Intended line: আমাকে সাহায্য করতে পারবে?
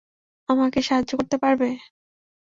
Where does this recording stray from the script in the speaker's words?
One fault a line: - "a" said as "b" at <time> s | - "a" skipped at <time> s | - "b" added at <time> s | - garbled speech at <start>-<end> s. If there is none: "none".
none